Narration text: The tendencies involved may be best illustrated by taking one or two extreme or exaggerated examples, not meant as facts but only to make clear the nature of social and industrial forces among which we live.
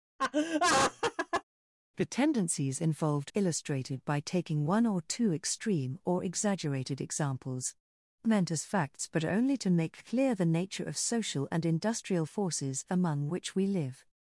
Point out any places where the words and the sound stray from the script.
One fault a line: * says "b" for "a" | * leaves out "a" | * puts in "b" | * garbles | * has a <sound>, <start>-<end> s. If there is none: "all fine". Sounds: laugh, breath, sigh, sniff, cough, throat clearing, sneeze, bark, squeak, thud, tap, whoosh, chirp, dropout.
* has a laugh, 0.2-1.4 s
* leaves out "may be best"
* leaves out "not"